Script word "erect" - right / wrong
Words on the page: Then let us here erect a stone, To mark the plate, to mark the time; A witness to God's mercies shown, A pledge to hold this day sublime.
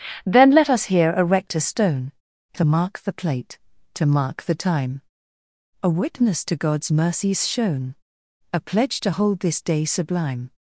right